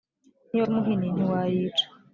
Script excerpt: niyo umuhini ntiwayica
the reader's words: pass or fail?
pass